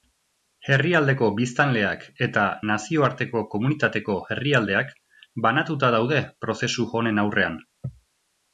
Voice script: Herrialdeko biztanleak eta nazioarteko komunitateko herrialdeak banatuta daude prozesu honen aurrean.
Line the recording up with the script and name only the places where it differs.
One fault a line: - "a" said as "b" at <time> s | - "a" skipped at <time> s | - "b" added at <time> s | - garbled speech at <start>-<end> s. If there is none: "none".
none